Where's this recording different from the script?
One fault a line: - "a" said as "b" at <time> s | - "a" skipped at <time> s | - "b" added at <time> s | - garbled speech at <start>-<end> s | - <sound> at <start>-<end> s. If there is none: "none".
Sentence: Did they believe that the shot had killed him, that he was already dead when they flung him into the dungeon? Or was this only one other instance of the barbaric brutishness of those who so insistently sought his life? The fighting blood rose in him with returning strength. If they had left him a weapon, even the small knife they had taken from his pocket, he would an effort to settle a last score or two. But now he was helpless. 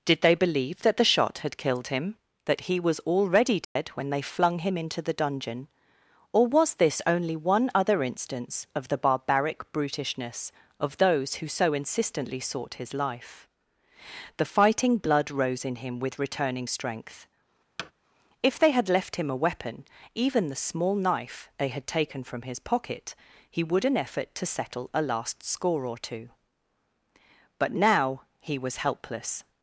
- dropout at 3.6-3.8 s
- thud at 17.8-17.9 s